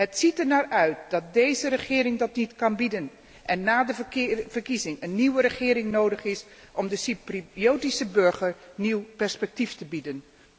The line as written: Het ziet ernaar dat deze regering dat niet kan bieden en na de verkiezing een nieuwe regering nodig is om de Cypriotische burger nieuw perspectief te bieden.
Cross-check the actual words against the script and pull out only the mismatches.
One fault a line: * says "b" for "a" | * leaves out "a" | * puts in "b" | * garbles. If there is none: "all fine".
* puts in "uit"